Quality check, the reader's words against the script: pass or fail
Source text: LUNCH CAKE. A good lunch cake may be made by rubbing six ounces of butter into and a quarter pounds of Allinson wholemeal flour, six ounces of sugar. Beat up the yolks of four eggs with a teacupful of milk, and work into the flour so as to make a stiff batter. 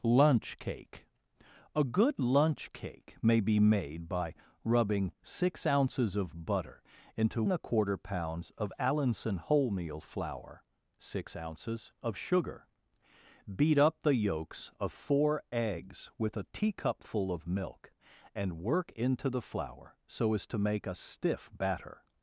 pass